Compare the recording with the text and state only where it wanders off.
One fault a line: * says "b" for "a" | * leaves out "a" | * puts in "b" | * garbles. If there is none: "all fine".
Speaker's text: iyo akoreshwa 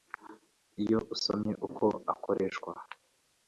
* puts in "usomye uko"